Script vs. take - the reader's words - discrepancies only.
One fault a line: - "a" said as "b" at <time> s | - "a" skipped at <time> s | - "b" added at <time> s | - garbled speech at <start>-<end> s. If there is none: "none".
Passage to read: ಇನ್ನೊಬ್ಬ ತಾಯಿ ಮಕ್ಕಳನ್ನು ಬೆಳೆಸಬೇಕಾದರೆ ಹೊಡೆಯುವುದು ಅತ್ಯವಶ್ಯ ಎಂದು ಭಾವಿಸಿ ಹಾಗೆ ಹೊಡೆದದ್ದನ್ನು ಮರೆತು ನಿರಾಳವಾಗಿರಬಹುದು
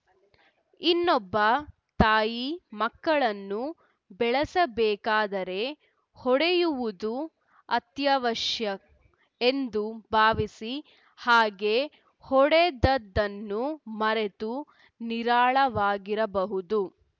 none